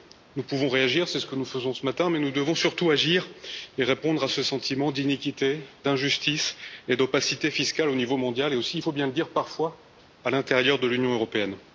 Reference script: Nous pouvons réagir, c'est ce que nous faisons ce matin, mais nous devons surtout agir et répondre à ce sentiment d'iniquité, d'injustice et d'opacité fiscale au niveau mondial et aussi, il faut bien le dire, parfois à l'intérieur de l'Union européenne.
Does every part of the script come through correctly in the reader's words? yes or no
yes